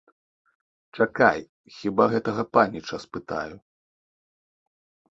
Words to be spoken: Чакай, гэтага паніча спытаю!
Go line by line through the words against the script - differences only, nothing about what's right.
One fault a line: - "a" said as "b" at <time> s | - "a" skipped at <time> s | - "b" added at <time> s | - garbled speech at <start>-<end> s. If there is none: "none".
- "хіба" added at 1.8 s